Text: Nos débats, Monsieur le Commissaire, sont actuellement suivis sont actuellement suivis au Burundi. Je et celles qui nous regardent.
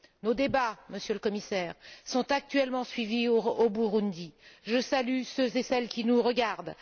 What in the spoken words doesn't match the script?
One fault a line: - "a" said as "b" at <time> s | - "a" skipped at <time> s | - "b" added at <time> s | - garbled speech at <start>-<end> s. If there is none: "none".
- "sont actuellement suivis" skipped at 3.3 s
- "salue ceux" added at 4.8 s